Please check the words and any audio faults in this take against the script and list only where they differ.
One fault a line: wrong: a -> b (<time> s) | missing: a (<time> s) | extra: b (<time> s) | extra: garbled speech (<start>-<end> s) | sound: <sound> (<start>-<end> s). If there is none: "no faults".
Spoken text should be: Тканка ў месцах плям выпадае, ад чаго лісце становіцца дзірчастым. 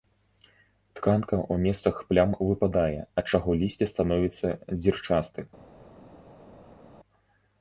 no faults